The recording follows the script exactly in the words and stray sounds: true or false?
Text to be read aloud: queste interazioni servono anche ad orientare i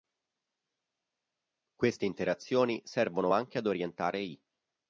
true